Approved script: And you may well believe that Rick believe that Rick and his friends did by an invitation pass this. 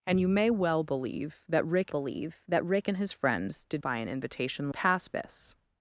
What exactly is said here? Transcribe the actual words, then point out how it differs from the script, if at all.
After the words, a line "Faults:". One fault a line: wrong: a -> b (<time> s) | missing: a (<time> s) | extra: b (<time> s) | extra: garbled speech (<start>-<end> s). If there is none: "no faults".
And you may well believe that Rick believe that Rick and his friends did by an invitation pass this.
Faults:
no faults